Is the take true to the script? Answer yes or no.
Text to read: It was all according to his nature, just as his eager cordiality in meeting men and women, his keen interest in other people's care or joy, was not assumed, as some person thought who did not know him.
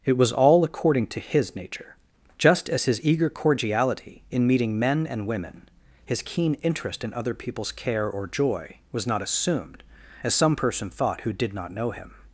yes